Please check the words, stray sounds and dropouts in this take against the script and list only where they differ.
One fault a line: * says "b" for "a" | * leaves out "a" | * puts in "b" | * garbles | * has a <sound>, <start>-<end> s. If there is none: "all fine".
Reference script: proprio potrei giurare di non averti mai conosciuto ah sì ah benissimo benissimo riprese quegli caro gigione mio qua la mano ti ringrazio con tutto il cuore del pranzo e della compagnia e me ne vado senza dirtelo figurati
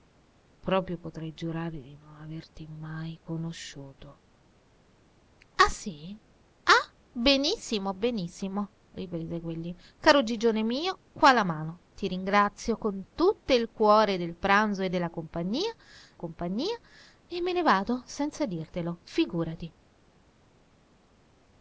* puts in "compagnia"